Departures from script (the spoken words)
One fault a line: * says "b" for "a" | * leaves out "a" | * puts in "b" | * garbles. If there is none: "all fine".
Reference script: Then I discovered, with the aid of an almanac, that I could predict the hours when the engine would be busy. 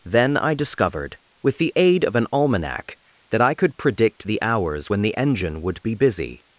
all fine